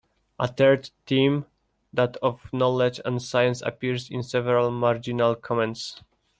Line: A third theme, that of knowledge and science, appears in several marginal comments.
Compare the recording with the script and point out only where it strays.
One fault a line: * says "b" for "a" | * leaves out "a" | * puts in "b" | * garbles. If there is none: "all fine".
all fine